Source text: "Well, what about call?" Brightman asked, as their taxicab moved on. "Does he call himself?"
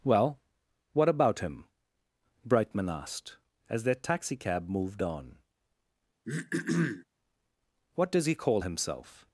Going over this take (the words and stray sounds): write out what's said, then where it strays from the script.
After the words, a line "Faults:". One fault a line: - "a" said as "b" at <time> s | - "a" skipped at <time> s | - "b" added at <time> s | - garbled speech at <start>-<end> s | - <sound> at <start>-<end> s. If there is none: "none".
"Well, what about him?" Brightman asked, as their taxicab moved on. "What does he call himself?"
Faults:
- "call" said as "him" at 1.4 s
- throat clearing at 6.2-7.0 s
- "What" added at 7.9 s